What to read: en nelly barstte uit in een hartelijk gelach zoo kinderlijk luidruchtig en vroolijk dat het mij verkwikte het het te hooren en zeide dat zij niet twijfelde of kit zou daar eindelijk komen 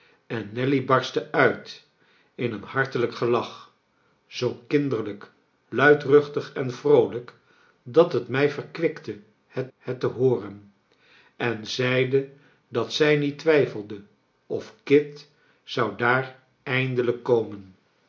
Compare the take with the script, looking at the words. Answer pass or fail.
pass